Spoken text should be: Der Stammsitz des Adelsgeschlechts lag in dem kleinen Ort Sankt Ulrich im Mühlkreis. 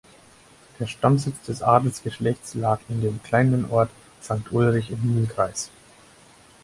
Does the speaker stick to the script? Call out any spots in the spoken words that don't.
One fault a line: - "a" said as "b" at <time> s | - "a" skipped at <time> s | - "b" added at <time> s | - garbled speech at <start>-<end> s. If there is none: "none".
none